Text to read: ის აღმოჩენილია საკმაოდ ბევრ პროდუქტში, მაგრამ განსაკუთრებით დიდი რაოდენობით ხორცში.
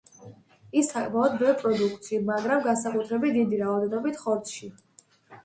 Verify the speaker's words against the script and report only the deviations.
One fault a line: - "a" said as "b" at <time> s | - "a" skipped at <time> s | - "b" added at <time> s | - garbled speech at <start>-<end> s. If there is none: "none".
- "აღმოჩენილია" skipped at 0.9 s